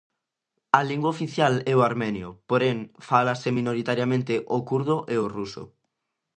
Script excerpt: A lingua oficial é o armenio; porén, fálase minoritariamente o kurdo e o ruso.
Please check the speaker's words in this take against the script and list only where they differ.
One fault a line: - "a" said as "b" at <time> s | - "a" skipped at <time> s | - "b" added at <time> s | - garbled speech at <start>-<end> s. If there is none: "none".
none